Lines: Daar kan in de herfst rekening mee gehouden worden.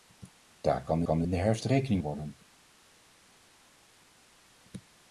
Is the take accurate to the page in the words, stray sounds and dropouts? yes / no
no